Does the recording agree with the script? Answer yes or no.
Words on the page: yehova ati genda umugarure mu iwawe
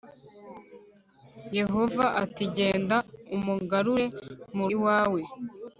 yes